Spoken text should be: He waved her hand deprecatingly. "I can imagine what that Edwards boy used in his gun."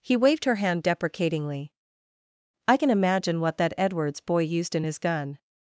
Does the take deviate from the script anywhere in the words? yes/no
no